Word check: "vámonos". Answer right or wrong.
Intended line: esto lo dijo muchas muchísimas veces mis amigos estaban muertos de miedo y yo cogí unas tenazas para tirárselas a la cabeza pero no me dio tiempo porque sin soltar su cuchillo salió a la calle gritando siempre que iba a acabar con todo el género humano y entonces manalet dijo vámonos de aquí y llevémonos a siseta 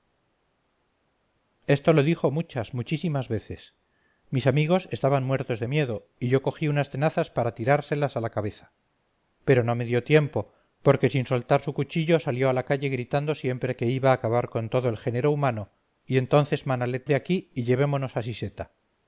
wrong